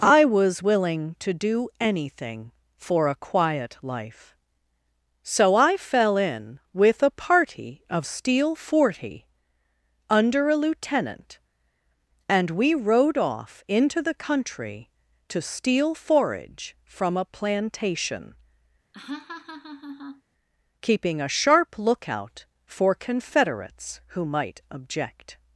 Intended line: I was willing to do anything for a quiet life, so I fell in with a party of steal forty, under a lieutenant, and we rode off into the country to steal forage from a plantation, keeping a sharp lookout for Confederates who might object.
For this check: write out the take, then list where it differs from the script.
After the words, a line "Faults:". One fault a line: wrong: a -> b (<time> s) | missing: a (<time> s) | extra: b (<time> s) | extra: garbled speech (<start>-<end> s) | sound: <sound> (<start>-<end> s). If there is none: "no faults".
I was willing to do anything for a quiet life, so I fell in with a party of steal forty, under a lieutenant, and we rode off into the country to steal forage from a plantation, keeping a sharp lookout for Confederates who might object.
Faults:
sound: laugh (18.9-20.2 s)